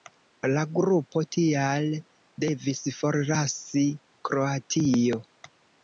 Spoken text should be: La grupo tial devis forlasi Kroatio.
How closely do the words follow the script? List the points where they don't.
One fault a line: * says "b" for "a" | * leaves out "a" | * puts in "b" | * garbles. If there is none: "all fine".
all fine